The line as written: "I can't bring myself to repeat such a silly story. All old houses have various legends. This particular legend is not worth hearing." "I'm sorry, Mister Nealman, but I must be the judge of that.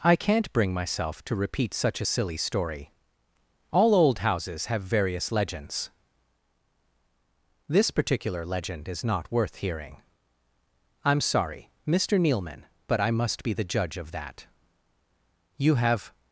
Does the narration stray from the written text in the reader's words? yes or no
yes